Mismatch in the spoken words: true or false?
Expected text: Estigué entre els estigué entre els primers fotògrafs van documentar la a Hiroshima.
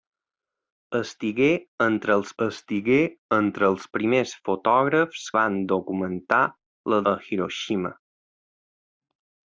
false